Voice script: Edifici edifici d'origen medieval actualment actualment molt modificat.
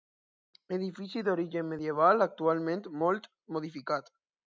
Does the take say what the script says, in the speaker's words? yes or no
no